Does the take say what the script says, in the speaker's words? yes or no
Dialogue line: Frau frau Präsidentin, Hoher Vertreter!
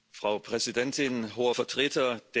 no